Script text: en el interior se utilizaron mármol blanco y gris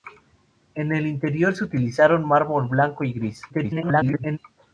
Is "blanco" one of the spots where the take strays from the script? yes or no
no